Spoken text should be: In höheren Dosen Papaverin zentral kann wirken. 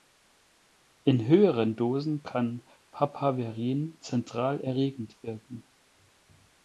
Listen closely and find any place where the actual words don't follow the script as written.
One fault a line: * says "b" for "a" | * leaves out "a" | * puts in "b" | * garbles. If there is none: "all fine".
* puts in "kann"
* says "erregend" for "kann"